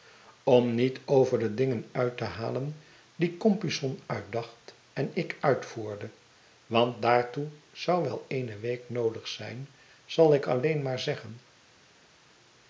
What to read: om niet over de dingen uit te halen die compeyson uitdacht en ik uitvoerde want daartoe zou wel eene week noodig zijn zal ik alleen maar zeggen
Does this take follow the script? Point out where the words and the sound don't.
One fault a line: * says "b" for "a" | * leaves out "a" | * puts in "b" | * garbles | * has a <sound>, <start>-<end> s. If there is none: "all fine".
all fine